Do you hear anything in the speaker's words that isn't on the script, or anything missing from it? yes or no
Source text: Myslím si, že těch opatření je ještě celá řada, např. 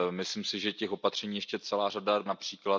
no